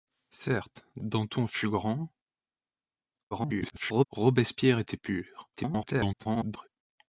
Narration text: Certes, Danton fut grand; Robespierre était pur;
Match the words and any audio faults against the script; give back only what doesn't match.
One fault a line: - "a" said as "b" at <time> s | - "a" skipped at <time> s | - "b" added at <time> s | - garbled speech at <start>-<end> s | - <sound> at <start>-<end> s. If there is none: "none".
- garbled speech at 3.3-4.0 s
- garbled speech at 5.6-6.7 s